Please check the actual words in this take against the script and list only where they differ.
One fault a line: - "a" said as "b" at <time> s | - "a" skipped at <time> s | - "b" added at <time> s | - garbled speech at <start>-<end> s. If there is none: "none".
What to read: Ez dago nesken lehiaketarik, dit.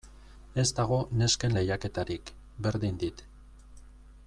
- "berdin" added at 2.7 s